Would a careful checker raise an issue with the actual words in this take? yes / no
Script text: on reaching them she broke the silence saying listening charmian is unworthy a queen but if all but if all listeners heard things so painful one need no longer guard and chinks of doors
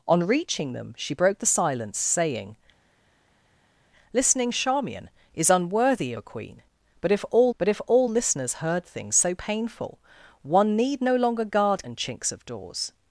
no